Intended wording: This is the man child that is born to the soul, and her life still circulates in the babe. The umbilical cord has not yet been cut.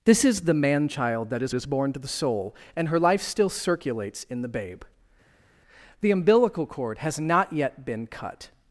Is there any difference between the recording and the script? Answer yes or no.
yes